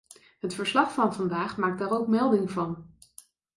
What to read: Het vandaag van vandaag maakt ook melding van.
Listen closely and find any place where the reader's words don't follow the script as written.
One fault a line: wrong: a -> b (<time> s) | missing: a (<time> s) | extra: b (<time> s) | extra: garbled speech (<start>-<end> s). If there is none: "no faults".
wrong: vandaag -> verslag (0.5 s)
extra: daar (1.8 s)